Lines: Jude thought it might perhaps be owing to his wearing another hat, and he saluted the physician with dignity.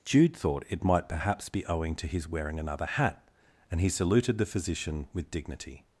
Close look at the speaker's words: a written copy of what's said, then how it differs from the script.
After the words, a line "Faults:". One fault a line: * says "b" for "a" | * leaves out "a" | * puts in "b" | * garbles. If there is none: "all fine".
Jude thought it might perhaps be owing to his wearing another hat, and he saluted the physician with dignity.
Faults:
all fine